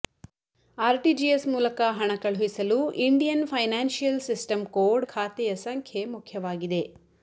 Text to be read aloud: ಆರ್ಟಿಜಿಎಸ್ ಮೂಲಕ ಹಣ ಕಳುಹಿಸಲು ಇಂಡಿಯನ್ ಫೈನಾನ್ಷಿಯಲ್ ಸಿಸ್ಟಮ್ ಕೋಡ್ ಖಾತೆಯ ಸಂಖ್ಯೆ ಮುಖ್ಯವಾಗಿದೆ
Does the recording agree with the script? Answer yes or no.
yes